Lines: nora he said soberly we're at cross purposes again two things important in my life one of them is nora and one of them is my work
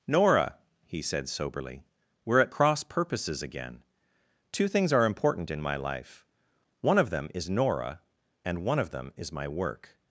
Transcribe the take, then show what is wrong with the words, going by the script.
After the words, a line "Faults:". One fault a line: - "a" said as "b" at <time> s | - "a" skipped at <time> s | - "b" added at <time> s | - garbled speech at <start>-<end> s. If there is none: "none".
nora he said soberly we're at cross purposes again two things are important in my life one of them is nora and one of them is my work
Faults:
- "are" added at 4.9 s